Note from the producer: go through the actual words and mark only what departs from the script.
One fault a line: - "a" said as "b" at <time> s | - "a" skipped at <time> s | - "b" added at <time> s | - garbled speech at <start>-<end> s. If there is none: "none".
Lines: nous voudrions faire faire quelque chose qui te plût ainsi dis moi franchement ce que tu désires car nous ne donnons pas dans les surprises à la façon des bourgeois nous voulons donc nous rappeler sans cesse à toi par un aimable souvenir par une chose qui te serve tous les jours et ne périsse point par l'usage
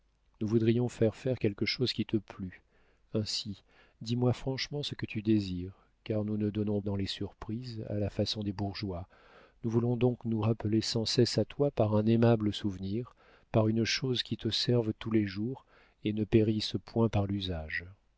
- "pas" skipped at 6.8 s